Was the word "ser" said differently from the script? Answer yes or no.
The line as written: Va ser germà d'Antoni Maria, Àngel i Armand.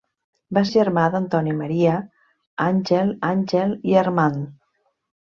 yes